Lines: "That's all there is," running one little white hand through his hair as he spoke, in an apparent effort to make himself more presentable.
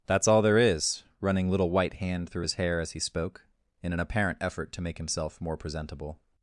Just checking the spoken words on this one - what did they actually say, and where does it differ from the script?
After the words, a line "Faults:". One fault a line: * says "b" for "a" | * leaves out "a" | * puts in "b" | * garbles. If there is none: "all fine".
"That's all there is," running little white hand through his hair as he spoke, in an apparent effort to make himself more presentable.
Faults:
* leaves out "one"